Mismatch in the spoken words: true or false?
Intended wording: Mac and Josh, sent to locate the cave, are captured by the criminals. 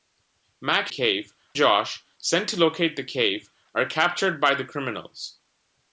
true